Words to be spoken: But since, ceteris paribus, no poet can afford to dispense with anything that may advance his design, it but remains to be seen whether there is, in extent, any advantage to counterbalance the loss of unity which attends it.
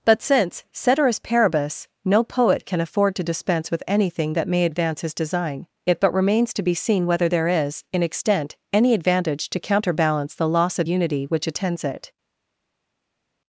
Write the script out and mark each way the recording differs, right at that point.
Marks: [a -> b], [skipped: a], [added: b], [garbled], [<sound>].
But since, ceteris paribus, no poet can afford to dispense with anything that may advance his design, it but remains to be seen whether there is, in extent, any advantage to counterbalance the loss of unity which attends it.